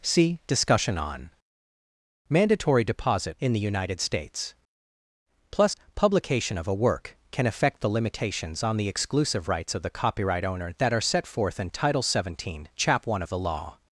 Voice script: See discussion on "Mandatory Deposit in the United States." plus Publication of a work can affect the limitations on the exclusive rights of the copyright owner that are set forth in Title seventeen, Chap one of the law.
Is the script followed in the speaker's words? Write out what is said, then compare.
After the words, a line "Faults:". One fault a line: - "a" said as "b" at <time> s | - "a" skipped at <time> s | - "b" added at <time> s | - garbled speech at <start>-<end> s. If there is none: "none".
See discussion on "Mandatory Deposit in the United States." plus Publication of a work can affect the limitations on the exclusive rights of the copyright owner that are set forth in Title seventeen, Chap one of the law.
Faults:
none